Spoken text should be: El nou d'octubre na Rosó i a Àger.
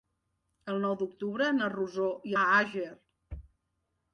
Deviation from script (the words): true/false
false